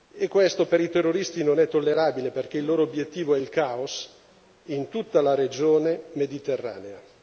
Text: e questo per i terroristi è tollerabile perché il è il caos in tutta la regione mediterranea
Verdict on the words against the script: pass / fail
fail